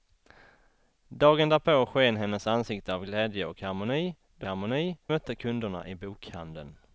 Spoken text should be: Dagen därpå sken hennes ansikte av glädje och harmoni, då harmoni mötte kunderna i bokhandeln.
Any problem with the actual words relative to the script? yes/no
no